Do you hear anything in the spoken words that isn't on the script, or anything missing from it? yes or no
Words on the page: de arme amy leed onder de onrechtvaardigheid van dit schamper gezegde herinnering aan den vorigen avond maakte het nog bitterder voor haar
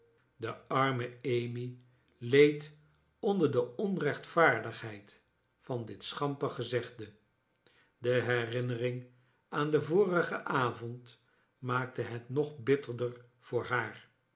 yes